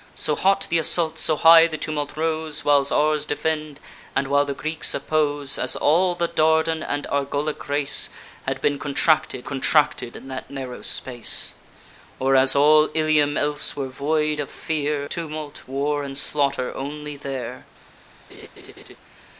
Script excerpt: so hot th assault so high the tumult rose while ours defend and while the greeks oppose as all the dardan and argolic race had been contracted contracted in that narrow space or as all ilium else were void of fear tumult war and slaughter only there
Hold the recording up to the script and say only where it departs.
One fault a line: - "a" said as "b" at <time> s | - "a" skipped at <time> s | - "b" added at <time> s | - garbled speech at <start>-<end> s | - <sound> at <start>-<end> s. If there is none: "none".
- laugh at 18.3-19.0 s